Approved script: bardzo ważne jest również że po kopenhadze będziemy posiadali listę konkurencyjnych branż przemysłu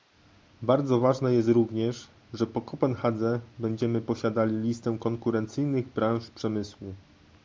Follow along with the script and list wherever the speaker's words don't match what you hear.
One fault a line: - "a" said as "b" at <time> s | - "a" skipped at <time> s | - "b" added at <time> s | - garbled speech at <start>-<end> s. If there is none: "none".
none